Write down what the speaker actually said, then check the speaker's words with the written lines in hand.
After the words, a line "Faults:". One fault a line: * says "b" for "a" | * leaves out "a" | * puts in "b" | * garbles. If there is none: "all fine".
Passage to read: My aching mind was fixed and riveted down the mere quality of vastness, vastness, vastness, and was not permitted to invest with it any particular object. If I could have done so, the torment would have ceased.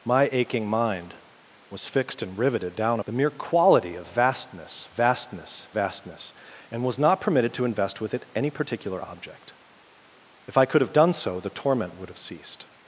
My aching mind was fixed and riveted down the mere quality of vastness, vastness, vastness, and was not permitted to invest with it any particular object. If I could have done so, the torment would have ceased.
Faults:
all fine